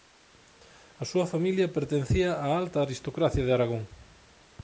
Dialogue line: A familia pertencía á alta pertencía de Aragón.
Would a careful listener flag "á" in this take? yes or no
no